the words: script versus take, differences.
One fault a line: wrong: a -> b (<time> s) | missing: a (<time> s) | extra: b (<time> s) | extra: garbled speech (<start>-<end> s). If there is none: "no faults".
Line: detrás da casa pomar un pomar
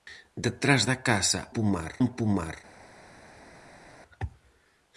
no faults